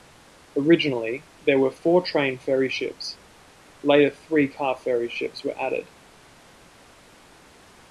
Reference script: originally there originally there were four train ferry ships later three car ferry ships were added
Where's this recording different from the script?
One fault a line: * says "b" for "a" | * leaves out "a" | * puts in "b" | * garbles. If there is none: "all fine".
* leaves out "originally there"